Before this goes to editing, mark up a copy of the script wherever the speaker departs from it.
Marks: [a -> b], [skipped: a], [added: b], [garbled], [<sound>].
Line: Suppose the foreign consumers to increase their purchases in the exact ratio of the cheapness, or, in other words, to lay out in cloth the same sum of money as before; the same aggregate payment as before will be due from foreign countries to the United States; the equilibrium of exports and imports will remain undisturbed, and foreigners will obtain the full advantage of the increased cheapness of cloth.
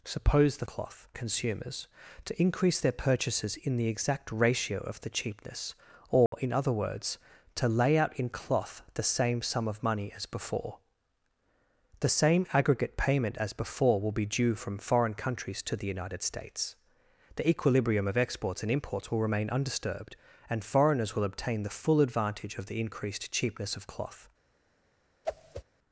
Suppose the [foreign -> cloth] consumers to increase their purchases in the exact ratio of the cheapness, or, [dropout] in other words, to lay out in cloth the same sum of money as before; the same aggregate payment as before will be due from foreign countries to the United States; the equilibrium of exports and imports will remain undisturbed, and foreigners will obtain the full advantage of the increased cheapness of cloth. [whoosh]